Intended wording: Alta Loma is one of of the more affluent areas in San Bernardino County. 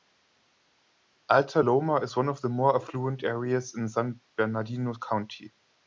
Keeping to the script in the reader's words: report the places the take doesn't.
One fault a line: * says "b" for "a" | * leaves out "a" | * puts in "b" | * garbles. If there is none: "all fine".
* leaves out "of"